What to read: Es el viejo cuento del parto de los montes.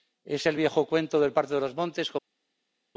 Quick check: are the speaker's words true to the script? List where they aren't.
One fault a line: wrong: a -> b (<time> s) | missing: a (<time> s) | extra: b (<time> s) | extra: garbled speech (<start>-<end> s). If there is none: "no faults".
no faults